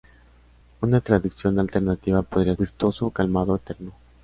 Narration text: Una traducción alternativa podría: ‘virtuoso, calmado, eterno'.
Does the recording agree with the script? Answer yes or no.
yes